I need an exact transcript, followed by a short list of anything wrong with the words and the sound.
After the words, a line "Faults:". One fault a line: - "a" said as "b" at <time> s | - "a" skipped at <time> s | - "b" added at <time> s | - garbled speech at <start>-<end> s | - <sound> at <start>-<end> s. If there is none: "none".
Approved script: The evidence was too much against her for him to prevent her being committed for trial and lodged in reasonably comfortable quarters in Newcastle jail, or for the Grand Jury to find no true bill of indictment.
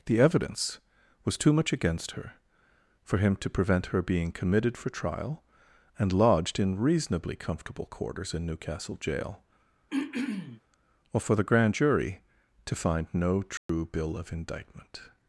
The evidence was too much against her for him to prevent her being committed for trial and lodged in reasonably comfortable quarters in Newcastle jail, or for the Grand Jury to find no true bill of indictment.
Faults:
- throat clearing at 9.9-10.6 s
- dropout at 13.6-13.7 s